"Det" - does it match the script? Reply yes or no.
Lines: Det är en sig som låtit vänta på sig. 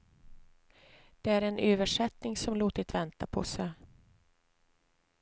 yes